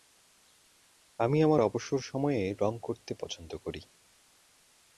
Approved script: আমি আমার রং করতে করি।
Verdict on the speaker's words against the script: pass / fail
fail